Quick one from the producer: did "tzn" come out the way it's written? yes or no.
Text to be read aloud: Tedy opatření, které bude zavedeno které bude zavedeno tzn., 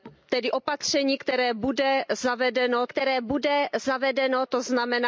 yes